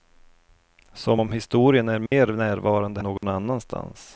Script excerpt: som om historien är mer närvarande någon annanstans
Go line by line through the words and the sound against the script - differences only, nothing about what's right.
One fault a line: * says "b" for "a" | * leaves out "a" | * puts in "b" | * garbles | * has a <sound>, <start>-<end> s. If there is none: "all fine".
* has a dropout, 2.1-2.1 s
* has a dropout, 3.2-3.2 s